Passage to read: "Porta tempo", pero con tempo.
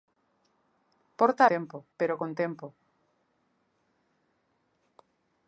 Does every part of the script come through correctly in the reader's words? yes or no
yes